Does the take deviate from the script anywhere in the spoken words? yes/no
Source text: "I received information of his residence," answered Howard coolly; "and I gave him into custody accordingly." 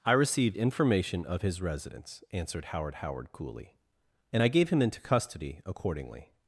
yes